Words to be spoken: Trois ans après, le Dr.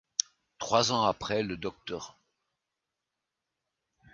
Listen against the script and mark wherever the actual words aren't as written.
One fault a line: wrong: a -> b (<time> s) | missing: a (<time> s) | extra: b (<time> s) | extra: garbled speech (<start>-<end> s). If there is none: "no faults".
no faults